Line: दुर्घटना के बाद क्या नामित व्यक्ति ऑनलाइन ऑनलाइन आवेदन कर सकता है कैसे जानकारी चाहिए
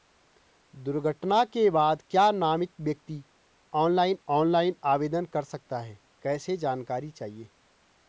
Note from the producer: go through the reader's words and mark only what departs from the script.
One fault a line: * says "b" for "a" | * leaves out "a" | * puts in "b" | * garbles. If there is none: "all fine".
all fine